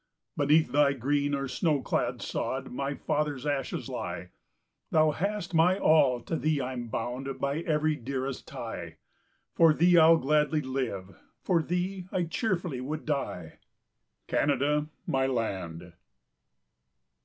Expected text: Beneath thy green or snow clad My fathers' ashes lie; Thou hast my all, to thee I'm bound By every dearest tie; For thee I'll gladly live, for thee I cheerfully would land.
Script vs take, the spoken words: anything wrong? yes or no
yes